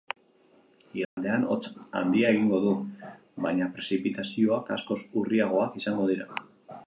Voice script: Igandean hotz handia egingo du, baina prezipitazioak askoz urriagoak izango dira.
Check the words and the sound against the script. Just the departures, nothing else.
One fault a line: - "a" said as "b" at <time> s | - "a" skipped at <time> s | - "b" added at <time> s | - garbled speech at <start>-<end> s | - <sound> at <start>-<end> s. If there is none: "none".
- dropout at 1.0-1.2 s